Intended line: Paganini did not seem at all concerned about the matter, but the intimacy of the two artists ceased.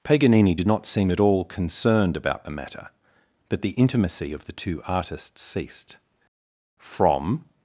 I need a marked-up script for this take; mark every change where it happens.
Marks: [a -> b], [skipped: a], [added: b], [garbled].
Paganini did not seem at all concerned about the matter, but the intimacy of the two artists ceased. [added: From]